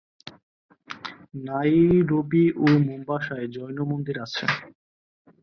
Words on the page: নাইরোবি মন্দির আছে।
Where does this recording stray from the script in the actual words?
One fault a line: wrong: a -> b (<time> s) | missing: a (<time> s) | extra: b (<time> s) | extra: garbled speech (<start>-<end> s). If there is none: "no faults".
extra: ও মোম্বাসায় জৈন (2.6 s)